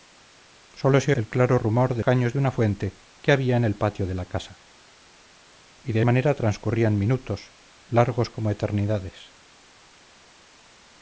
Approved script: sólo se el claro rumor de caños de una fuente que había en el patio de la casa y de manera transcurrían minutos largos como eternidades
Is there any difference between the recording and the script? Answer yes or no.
no